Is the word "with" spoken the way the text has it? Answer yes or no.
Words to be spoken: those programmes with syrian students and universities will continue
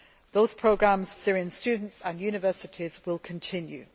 no